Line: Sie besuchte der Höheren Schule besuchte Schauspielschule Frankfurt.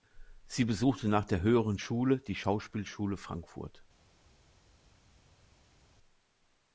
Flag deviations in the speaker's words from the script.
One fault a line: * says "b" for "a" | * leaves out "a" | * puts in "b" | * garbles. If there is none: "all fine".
* puts in "nach"
* says "die" for "besuchte"